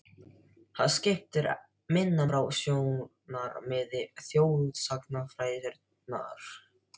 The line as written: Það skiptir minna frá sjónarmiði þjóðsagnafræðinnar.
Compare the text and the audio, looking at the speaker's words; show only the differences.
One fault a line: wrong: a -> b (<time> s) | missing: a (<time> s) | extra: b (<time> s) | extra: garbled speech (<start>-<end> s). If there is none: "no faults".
no faults